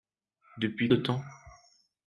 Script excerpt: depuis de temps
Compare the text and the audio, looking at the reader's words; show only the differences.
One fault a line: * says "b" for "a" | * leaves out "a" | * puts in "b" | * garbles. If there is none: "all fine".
all fine